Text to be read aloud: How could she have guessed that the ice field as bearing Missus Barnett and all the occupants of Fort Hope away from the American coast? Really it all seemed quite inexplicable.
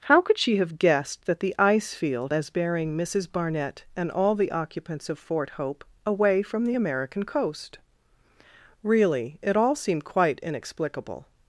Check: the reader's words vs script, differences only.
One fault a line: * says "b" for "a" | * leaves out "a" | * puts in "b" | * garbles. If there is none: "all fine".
all fine